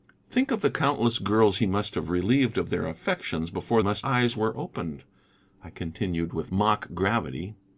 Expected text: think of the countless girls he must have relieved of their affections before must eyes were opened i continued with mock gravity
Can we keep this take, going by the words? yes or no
yes